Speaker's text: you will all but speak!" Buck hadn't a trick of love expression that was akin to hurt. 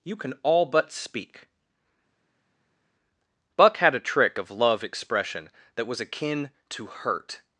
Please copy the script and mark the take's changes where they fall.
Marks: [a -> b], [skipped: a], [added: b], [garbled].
you [will -> can] all but speak!" Buck [hadn't -> had] a trick of love expression that was akin to hurt.